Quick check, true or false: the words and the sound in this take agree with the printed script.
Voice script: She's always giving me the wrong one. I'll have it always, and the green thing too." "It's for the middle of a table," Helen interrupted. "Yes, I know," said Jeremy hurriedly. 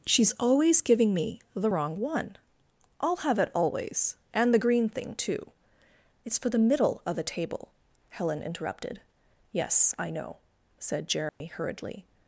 false